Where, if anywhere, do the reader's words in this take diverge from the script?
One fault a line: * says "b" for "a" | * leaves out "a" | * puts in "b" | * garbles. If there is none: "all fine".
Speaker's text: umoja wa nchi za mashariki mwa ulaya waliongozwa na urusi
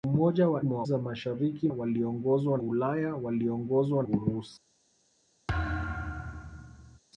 * says "mwa" for "nchi"
* says "waliongozwa" for "mwa"
* leaves out "na"